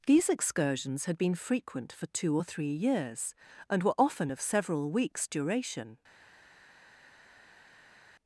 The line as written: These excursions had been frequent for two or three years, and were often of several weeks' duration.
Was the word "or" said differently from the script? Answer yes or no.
no